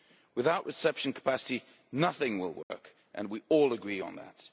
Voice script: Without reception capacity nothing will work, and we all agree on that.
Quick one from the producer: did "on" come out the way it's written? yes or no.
yes